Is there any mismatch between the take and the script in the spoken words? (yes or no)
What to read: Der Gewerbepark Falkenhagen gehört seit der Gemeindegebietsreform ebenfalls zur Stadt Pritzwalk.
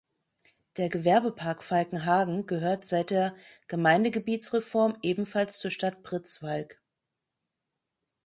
no